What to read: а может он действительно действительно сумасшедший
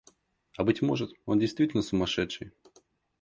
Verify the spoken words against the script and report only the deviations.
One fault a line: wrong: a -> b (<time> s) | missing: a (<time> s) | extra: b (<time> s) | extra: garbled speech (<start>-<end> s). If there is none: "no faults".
extra: быть (0.6 s)
missing: действительно (1.8 s)